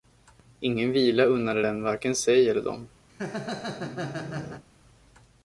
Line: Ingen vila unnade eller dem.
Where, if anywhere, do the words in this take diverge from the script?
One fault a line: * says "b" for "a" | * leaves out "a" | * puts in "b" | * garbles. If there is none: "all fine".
* puts in "den varken sig"